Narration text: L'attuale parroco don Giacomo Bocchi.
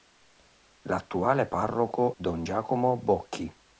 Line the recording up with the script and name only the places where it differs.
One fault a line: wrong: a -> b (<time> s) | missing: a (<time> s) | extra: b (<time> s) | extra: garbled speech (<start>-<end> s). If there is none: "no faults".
no faults